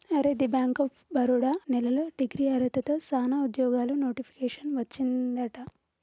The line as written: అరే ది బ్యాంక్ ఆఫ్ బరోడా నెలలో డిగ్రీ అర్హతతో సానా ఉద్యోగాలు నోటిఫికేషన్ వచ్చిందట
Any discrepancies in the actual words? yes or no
no